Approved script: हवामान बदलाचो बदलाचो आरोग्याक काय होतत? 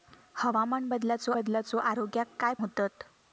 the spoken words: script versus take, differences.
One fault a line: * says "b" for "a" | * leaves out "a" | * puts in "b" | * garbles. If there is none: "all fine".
all fine